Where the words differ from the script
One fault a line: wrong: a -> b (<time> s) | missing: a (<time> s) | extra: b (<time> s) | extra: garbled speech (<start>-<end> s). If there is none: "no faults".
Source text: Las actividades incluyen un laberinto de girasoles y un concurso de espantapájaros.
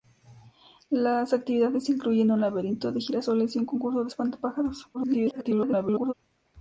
extra: garbled speech (4.9-6.1 s)